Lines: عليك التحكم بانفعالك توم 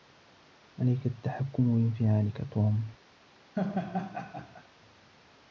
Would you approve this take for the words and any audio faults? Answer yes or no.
no